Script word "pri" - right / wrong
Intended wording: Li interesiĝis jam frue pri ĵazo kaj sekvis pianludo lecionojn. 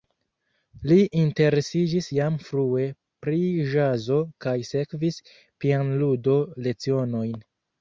right